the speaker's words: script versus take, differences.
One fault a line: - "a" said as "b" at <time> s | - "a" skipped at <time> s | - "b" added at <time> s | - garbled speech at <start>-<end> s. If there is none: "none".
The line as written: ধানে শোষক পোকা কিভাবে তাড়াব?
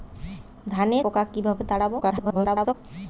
- "শোষক" skipped at 1.0 s
- garbled speech at 2.0-2.7 s